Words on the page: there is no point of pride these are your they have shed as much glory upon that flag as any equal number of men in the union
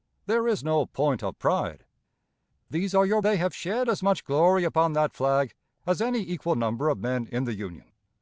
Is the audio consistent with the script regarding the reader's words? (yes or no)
yes